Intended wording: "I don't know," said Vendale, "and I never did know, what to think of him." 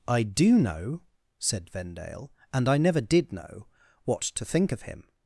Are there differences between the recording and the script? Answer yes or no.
yes